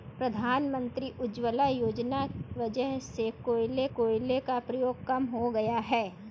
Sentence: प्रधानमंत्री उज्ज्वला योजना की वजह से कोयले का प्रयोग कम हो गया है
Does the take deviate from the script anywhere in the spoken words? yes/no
yes